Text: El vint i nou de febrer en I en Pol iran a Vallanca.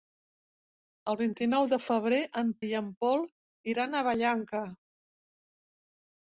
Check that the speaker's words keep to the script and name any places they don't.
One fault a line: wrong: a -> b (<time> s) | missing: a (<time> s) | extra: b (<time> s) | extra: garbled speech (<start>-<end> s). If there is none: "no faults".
no faults